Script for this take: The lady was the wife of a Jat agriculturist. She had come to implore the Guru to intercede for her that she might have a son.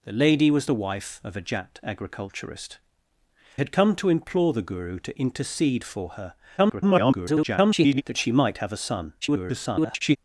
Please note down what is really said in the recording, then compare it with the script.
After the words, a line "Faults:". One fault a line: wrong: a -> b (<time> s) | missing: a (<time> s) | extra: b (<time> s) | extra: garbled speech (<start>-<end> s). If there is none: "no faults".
The lady was the wife of a Jat agriculturist. Had come to implore the Guru to intercede for her [garbled] that she might have a son. [garbled]
Faults:
missing: She (2.8 s)
extra: garbled speech (6.6-8.0 s)
extra: garbled speech (9.2-10.2 s)